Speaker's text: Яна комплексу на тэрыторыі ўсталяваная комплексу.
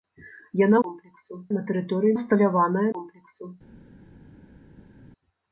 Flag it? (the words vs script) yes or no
no